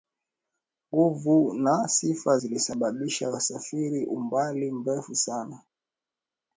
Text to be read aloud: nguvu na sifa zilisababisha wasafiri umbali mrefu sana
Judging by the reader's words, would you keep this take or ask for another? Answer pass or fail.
pass